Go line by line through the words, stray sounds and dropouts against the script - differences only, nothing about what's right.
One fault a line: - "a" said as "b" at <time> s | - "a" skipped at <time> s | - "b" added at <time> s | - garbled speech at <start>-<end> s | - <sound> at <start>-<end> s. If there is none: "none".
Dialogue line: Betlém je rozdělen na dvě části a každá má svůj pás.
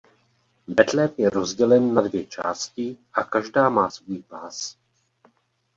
none